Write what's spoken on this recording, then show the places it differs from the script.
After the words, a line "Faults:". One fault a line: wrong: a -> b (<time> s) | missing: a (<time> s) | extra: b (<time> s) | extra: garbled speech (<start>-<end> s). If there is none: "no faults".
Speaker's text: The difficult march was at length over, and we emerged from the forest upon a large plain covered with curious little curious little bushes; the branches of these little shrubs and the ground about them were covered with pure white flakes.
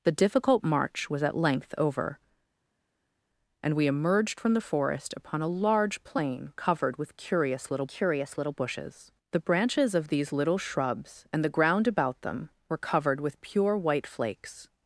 The difficult march was at length over, and we emerged from the forest upon a large plain covered with curious little curious little bushes; the branches of these little shrubs and the ground about them were covered with pure white flakes.
Faults:
no faults